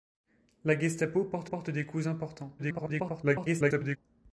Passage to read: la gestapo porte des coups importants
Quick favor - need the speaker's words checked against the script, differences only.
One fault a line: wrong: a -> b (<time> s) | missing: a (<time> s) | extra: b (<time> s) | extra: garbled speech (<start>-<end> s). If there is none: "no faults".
extra: porte (1.4 s)
extra: garbled speech (2.6-4.0 s)